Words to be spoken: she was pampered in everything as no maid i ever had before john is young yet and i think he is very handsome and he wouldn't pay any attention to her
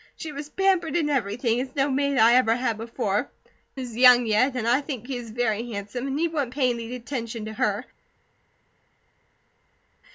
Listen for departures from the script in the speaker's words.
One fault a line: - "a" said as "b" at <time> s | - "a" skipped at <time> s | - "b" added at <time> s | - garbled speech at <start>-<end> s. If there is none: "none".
- "john" skipped at 3.3 s